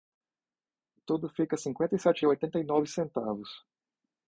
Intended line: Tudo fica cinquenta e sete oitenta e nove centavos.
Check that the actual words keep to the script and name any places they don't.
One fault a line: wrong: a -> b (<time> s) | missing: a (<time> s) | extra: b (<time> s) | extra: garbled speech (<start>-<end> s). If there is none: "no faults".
no faults